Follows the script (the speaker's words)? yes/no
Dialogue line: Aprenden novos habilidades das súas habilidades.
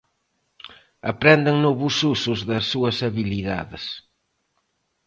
no